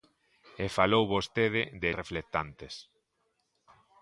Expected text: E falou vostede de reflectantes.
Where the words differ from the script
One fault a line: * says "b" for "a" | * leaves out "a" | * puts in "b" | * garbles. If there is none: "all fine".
all fine